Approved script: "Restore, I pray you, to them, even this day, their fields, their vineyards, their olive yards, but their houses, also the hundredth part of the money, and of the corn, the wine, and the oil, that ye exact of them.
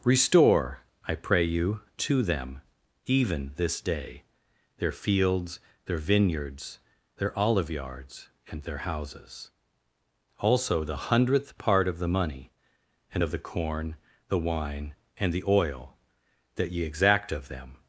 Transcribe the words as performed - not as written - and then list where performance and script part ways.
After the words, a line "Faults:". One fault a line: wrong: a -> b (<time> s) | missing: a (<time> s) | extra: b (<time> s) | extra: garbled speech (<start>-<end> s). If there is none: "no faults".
"Restore, I pray you, to them, even this day, their fields, their vineyards, their olive yards, and their houses, also the hundredth part of the money, and of the corn, the wine, and the oil, that ye exact of them.
Faults:
wrong: but -> and (8.5 s)